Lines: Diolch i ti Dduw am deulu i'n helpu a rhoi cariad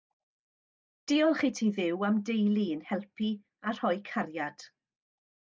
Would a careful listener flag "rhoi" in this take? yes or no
no